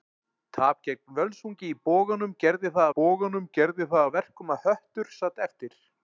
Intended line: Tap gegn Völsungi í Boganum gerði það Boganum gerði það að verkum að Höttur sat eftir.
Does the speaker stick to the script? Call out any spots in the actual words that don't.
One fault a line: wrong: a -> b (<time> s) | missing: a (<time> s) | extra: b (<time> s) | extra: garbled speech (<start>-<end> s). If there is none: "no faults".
no faults